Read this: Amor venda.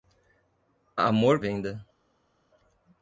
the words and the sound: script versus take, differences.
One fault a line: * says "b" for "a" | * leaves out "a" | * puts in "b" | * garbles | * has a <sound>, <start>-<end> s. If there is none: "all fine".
all fine